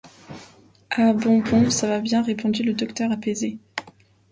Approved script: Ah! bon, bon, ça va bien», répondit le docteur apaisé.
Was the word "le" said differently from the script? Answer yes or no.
no